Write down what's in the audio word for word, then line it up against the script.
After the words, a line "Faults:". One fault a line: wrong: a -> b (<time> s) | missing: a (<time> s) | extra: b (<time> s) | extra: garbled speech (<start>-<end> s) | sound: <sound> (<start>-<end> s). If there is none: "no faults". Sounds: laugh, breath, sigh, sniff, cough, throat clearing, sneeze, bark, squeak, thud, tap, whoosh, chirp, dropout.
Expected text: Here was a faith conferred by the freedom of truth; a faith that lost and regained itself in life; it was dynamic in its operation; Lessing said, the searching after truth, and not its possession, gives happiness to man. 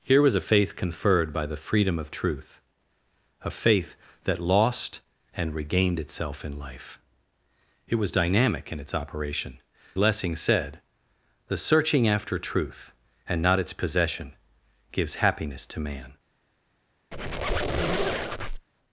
Here was a faith conferred by the freedom of truth; a faith that lost and regained itself in life; it was dynamic in its operation; Lessing said, the searching after truth, and not its possession, gives happiness to man.
Faults:
sound: squeak (17.1-18.7 s)